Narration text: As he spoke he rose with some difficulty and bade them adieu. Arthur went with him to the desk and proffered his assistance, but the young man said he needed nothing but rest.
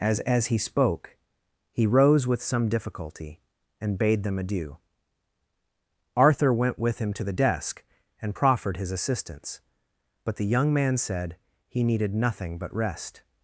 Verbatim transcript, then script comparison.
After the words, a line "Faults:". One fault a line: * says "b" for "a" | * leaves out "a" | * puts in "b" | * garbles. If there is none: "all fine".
As as he spoke he rose with some difficulty and bade them adieu. Arthur went with him to the desk and proffered his assistance, but the young man said he needed nothing but rest.
Faults:
* puts in "as"